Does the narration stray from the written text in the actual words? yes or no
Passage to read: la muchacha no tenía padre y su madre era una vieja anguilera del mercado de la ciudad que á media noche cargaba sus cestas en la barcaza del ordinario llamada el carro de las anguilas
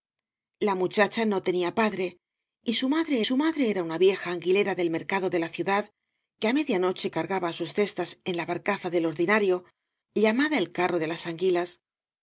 yes